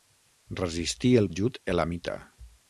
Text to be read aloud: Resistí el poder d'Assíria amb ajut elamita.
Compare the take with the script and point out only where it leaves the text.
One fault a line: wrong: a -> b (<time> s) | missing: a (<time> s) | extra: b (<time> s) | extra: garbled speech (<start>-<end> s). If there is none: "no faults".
missing: poder d'Assíria amb (1.3 s)